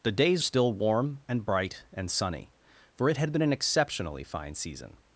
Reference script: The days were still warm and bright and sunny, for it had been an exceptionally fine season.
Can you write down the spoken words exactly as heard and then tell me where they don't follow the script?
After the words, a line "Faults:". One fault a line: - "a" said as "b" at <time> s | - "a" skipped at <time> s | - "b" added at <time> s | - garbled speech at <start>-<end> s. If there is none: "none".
The days still warm and bright and sunny, for it had been an exceptionally fine season.
Faults:
- "were" skipped at 0.4 s